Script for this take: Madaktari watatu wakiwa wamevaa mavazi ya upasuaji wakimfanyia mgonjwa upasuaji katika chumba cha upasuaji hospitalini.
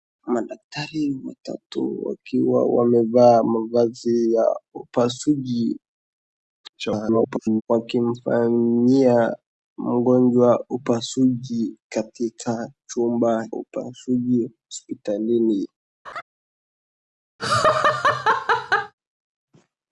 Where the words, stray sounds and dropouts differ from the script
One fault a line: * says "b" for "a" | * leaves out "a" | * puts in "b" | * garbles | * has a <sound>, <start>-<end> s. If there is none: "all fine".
* garbles
* leaves out "cha"
* has a laugh, 16.0-16.2 s
* has a laugh, 17.4-18.9 s